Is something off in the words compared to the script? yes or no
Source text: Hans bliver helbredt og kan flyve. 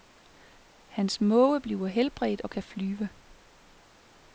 yes